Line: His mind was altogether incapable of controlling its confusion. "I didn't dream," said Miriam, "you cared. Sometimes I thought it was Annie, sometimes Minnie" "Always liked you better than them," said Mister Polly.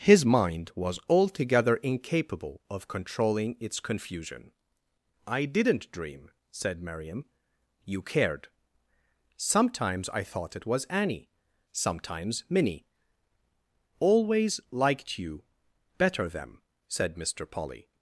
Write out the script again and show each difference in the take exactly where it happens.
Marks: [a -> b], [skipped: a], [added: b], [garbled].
His mind was altogether incapable of controlling its confusion. "I didn't dream," said Miriam, "you cared. Sometimes I thought it was Annie, sometimes Minnie" "Always liked you better [skipped: than] them," said Mister Polly.